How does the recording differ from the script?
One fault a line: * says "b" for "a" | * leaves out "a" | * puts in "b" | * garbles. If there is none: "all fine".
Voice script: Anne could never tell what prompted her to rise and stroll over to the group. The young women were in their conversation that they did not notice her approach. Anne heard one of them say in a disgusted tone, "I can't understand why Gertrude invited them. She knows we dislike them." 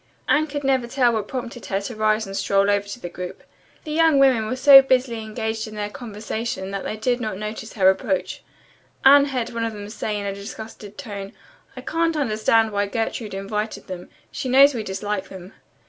* puts in "so busily engaged"